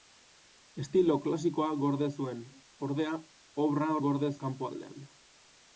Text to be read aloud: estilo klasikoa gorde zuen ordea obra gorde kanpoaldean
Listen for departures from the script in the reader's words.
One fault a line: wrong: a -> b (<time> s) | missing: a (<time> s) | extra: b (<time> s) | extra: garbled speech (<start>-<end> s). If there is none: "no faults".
no faults